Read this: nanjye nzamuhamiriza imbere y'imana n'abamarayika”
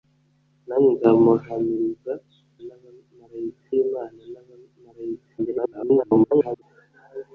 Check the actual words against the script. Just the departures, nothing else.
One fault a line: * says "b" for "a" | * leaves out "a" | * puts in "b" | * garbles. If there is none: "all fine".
* says "n'abamarayika" for "imbere"
* garbles